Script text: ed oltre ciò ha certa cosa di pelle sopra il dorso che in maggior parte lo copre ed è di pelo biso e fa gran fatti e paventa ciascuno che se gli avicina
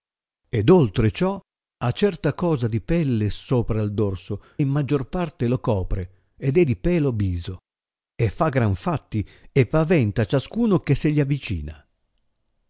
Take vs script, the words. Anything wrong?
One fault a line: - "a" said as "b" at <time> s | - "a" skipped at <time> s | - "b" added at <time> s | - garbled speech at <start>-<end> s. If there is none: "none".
- "che" skipped at 4.4 s